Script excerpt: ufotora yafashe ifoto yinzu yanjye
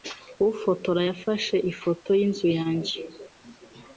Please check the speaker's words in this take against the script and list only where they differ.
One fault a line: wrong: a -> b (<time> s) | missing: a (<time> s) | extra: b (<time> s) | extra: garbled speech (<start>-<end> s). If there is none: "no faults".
no faults